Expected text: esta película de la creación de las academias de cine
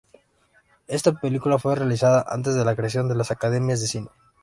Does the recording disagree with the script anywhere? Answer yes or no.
yes